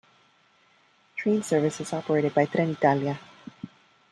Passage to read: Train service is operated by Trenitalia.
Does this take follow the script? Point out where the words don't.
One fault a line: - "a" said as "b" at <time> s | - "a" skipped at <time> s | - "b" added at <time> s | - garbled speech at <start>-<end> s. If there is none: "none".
none